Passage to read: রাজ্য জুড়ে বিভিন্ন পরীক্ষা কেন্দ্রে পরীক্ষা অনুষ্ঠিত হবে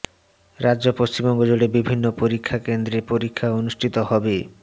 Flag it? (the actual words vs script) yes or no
yes